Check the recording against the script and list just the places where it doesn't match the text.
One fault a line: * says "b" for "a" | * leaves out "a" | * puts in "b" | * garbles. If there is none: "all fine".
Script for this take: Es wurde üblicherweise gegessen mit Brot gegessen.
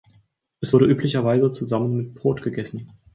* says "zusammen" for "gegessen"